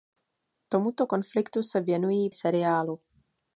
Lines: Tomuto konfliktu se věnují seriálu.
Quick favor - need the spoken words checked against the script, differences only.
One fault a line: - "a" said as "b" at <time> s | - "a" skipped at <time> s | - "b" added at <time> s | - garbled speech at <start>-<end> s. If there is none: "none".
none